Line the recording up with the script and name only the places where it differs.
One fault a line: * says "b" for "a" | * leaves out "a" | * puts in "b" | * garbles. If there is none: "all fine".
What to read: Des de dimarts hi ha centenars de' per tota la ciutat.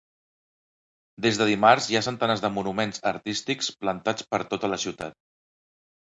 * puts in "monuments artístics plantats"